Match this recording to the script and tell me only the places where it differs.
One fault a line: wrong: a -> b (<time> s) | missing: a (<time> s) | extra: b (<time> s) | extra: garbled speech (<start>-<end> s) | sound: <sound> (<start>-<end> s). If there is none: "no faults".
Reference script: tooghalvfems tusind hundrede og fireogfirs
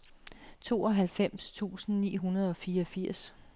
extra: ni (2.0 s)